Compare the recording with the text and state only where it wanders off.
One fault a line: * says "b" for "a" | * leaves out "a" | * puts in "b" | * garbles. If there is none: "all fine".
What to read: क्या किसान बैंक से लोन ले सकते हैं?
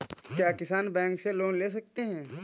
all fine